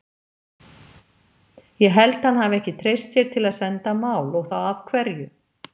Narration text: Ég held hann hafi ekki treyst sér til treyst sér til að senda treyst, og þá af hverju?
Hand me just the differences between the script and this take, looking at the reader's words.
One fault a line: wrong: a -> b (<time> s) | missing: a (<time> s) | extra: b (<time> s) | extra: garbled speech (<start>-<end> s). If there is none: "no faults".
missing: treyst sér til (3.5 s)
wrong: treyst -> mál (4.1 s)